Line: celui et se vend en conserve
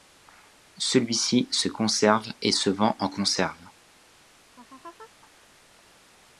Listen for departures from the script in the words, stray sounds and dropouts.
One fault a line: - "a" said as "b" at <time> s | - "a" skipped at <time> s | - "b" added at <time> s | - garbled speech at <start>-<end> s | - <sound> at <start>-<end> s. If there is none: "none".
- "ci se conserve" added at 1.1 s
- laugh at 4.5-5.1 s